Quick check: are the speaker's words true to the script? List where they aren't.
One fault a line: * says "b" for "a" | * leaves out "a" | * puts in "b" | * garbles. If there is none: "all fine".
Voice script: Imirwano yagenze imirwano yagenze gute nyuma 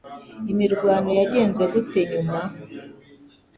* leaves out "imirwano yagenze"